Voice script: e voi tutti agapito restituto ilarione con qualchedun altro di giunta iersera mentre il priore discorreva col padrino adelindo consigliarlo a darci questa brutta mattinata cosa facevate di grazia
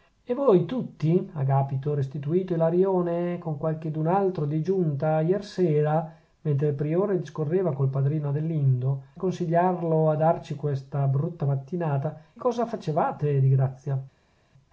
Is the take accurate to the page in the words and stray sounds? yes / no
yes